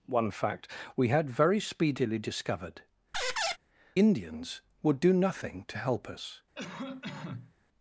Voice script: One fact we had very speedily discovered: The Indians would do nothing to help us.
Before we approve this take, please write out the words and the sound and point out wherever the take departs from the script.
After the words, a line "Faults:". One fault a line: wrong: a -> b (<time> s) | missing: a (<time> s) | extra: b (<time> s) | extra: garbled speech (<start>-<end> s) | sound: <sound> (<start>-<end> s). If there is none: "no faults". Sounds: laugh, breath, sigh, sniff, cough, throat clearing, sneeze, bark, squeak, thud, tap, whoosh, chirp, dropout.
One fact we had very speedily discovered: Indians would do nothing to help us.
Faults:
missing: The (2.8 s)
sound: squeak (3.1-3.6 s)
sound: cough (6.5-7.5 s)